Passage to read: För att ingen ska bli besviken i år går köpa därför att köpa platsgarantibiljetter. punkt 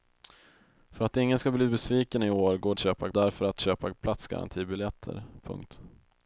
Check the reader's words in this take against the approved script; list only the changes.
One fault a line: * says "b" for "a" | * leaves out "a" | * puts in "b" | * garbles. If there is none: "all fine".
all fine